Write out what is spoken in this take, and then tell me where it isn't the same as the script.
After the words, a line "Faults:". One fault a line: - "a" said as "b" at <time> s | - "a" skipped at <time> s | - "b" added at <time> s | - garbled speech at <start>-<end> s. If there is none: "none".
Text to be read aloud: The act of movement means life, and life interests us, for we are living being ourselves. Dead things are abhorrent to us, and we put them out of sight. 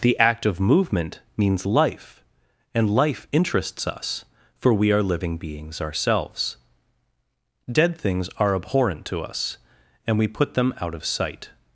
The act of movement means life, and life interests us, for we are living beings ourselves. Dead things are abhorrent to us, and we put them out of sight.
Faults:
- "being" said as "beings" at 5.4 s